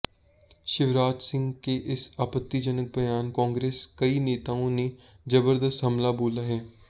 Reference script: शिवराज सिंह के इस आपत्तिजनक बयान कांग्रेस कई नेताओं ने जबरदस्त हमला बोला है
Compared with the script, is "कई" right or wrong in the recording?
right